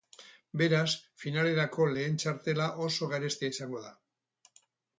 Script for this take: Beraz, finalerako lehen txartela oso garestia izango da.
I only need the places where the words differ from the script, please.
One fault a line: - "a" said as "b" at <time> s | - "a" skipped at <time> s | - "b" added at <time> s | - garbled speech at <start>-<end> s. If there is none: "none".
none